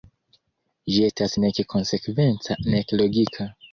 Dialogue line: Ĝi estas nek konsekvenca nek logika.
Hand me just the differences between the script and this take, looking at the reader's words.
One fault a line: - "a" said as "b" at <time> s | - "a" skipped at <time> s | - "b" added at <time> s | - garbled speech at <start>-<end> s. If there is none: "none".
none